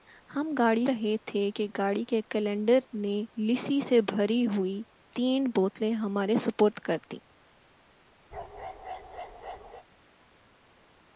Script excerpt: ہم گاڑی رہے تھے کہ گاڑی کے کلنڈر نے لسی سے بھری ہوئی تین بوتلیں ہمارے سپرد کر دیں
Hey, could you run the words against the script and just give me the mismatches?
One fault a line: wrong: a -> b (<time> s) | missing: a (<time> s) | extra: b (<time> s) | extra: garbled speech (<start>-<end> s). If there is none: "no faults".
no faults